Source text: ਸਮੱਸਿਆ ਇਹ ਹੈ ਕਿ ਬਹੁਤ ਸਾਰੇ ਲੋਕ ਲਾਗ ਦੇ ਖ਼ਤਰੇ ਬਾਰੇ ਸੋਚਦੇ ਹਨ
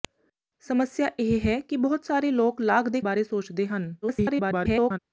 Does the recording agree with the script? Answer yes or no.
no